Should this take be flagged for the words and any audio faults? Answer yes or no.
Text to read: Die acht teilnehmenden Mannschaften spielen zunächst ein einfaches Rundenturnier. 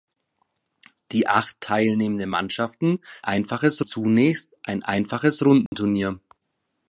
yes